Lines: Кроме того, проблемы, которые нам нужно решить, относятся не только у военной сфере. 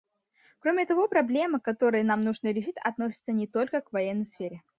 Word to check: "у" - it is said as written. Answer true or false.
false